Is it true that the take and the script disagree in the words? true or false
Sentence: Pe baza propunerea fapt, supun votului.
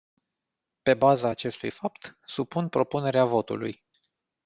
true